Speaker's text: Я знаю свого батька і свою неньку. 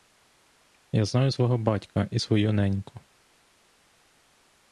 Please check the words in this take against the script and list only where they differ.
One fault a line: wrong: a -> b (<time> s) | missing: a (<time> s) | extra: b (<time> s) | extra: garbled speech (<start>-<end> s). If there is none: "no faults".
no faults